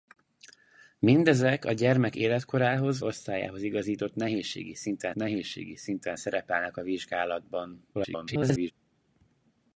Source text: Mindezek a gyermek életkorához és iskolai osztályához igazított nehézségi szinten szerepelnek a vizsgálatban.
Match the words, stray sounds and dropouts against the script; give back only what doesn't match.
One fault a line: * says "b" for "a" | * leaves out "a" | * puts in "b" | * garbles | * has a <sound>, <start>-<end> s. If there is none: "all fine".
* says "osztályához igazított nehézségi szinten" for "és iskolai osztályához igazított"
* garbles